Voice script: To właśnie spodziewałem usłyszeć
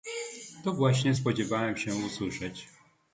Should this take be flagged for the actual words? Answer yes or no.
yes